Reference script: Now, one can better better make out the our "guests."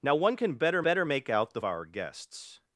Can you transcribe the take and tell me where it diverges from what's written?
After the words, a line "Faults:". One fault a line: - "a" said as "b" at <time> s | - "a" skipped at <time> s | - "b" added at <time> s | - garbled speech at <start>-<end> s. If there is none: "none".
Now, one can better better make out the our "guests."
Faults:
none